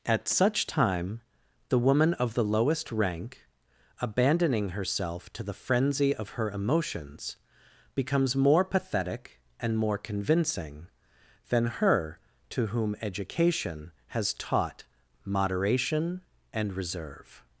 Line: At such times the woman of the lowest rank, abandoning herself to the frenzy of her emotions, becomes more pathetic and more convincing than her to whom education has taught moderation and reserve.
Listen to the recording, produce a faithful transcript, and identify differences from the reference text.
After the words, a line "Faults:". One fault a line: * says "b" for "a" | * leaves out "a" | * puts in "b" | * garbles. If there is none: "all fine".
At such time the woman of the lowest rank, abandoning herself to the frenzy of her emotions, becomes more pathetic and more convincing than her to whom education has taught moderation and reserve.
Faults:
* says "time" for "times"